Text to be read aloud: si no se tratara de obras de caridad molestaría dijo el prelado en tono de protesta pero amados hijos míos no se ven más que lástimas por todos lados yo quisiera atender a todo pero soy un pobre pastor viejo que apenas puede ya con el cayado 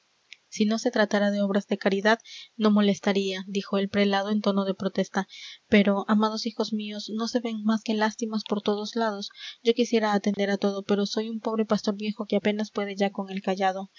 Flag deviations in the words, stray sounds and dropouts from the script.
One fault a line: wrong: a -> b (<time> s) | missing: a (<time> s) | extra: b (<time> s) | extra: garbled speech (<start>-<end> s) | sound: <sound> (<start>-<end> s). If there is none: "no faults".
extra: no (2.6 s)
sound: dropout (10.3-10.4 s)